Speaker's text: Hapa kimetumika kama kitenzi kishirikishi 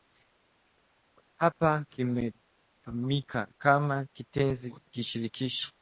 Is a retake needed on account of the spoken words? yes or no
no